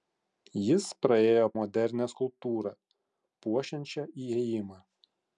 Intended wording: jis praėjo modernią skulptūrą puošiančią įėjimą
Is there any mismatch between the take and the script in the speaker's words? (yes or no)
no